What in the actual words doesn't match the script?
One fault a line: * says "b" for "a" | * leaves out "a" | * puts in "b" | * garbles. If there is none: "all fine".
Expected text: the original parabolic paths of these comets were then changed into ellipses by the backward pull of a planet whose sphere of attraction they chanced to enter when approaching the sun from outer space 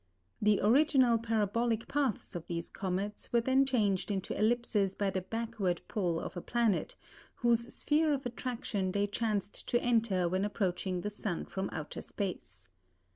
all fine